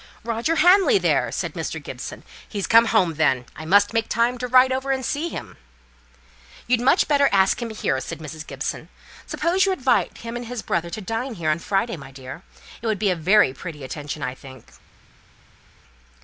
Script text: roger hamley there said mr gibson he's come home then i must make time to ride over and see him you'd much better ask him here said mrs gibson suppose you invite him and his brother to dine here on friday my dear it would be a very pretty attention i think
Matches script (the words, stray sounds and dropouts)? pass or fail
pass